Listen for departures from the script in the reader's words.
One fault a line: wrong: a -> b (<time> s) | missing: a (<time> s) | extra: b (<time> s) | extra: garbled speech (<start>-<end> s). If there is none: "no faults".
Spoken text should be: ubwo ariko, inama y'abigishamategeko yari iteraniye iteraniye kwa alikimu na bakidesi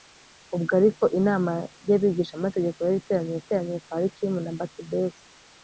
no faults